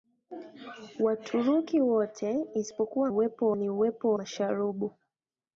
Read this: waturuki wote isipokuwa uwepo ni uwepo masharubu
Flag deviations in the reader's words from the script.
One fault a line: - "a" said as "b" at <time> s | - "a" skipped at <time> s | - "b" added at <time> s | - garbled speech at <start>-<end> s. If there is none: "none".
none